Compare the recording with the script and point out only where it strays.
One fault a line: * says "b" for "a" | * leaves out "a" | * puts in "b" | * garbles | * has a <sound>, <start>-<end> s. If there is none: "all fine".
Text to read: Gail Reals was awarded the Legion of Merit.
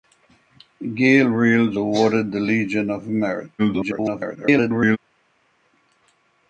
* leaves out "was"
* garbles